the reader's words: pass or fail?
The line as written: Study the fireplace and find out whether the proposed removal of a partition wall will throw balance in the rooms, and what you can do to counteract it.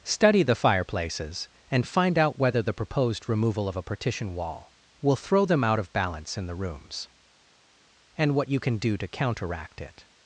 fail